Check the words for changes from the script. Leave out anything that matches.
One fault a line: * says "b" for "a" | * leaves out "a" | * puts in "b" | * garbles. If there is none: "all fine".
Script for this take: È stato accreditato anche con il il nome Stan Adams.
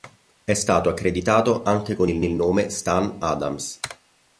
all fine